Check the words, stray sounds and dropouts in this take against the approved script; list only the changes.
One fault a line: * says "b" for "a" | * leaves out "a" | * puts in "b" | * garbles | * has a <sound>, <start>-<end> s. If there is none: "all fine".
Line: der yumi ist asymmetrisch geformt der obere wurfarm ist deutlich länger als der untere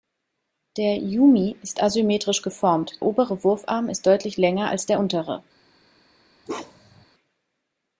* leaves out "der"
* has a bark, 6.5-7.1 s